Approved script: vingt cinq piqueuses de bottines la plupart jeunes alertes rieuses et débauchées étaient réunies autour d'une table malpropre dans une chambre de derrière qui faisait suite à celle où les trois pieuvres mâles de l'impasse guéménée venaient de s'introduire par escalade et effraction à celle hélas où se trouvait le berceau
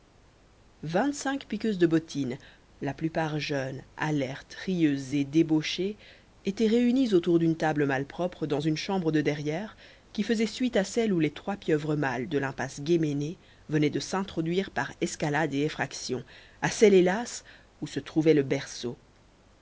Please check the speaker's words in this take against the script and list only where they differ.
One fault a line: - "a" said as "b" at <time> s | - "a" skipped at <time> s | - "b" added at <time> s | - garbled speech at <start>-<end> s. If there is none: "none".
none